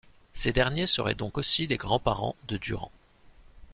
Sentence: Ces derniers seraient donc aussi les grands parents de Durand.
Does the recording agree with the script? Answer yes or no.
yes